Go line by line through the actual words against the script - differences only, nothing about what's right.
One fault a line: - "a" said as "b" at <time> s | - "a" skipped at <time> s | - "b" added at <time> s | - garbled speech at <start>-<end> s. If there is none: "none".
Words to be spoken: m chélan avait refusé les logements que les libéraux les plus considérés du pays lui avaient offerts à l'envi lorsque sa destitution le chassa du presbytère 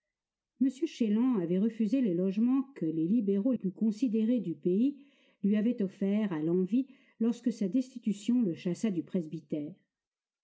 - "les" skipped at 3.5 s